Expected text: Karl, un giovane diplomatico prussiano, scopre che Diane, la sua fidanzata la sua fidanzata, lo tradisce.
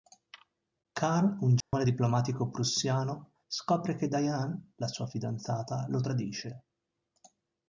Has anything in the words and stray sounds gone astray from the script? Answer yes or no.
yes